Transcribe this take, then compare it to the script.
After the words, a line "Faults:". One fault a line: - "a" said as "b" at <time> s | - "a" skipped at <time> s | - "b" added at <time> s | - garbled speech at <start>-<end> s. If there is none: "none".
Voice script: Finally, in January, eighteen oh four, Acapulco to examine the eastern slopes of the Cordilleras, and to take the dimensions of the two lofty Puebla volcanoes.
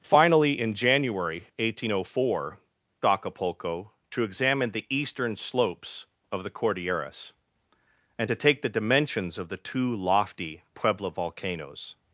Finally, in January, eighteen oh four, Acapulco to examine the eastern slopes of the Cordilleras, and to take the dimensions of the two lofty Puebla volcanoes.
Faults:
none